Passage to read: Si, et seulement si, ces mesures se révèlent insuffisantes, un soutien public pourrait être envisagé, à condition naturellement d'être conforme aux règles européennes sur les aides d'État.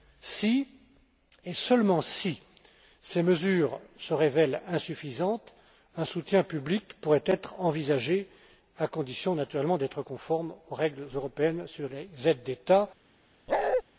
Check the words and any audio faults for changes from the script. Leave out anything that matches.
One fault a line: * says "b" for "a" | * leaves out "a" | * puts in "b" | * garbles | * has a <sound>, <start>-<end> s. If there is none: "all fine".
* has a bark, 13.5-13.8 s